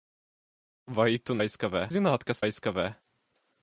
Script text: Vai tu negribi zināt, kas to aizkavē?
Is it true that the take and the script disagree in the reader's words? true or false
true